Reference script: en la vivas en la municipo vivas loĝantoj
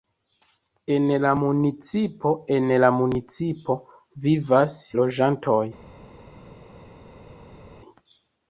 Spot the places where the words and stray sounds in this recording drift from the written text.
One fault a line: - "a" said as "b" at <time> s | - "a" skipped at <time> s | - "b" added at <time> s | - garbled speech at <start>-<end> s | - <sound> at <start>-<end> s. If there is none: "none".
- "vivas" said as "municipo" at 1.4 s